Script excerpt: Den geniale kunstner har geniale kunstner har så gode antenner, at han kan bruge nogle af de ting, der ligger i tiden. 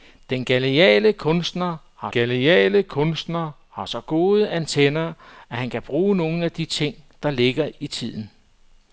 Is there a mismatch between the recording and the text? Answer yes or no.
no